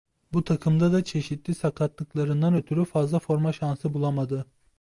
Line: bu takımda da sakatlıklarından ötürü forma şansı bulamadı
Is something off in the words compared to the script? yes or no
yes